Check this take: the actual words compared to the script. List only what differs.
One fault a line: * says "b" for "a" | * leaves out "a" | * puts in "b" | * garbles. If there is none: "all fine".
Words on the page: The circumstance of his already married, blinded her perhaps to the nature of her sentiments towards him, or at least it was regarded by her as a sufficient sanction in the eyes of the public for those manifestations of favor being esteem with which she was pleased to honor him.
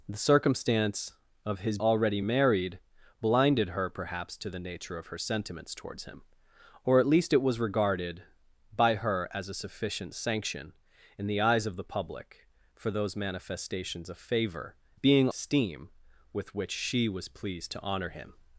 all fine